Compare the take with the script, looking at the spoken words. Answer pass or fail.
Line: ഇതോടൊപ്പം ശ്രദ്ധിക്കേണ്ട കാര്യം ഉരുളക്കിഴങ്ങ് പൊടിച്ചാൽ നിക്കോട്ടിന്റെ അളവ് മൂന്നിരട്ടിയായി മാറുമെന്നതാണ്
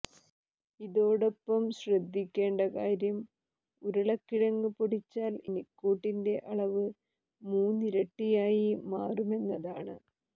pass